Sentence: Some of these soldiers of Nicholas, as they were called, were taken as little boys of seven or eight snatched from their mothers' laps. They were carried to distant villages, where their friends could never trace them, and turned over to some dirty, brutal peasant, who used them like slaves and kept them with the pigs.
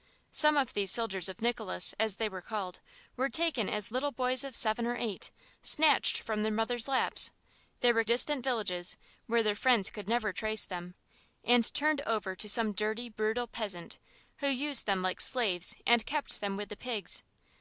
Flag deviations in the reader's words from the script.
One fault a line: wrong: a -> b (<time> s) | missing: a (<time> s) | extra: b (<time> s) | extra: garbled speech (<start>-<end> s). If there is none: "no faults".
missing: carried to (8.0 s)